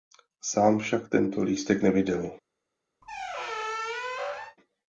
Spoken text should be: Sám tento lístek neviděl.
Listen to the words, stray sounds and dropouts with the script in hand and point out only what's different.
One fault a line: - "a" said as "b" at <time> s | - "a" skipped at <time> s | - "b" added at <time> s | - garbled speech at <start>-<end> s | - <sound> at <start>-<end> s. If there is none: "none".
- "však" added at 0.8 s
- squeak at 3.0-4.6 s